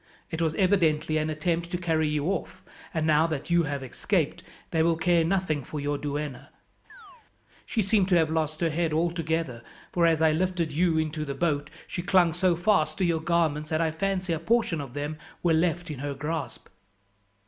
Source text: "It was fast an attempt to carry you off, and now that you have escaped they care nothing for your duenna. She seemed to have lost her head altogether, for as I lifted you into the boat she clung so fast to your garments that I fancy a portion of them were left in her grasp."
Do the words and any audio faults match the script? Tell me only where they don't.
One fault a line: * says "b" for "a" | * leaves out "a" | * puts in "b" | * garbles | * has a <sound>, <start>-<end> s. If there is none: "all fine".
* says "evidently" for "fast"
* puts in "will"
* has a chirp, 6.9-7.3 s